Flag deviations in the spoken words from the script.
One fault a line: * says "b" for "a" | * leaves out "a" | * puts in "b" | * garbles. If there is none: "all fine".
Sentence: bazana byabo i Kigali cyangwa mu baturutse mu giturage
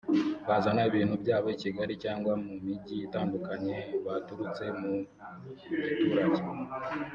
* puts in "ibintu"
* puts in "mijyi itandukanye"